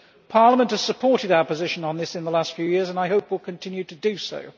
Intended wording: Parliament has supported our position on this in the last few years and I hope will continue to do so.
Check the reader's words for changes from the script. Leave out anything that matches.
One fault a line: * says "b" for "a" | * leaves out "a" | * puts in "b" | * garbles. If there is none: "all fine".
all fine